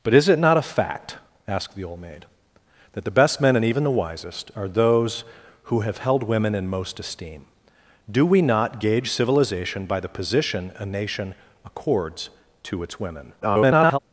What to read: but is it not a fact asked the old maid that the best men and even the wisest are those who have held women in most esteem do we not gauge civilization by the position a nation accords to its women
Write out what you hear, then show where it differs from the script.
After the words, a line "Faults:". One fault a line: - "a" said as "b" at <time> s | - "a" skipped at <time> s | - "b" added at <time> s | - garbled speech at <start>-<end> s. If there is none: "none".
but is it not a fact asked the old maid that the best men and even the wisest are those who have held women in most esteem do we not gauge civilization by the position a nation accords to its women [garbled]
Faults:
- garbled speech at 13.4-14.0 s